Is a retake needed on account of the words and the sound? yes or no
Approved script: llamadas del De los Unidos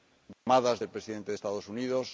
yes